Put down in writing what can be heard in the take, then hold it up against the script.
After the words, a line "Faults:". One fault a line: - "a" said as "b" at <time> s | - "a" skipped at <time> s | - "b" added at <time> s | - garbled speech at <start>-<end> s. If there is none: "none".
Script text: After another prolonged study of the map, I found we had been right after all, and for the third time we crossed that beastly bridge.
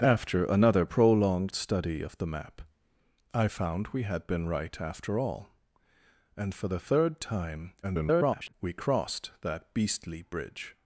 After another prolonged study of the map, I found we had been right after all, and for the third time [garbled] we crossed that beastly bridge.
Faults:
- garbled speech at 7.8-8.5 s